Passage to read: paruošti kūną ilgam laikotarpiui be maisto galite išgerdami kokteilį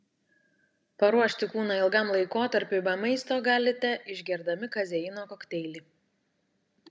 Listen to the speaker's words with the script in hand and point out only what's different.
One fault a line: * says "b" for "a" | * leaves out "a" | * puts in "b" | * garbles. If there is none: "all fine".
* puts in "kazeino"